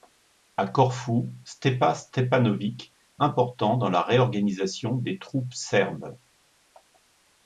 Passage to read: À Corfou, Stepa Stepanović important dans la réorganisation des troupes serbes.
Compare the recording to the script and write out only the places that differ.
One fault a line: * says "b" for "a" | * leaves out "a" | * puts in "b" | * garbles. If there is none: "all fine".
all fine